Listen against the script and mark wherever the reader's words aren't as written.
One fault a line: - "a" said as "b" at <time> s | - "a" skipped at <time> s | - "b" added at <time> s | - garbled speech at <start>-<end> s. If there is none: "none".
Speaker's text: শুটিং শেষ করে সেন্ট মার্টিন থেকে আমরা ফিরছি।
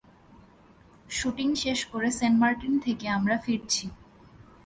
none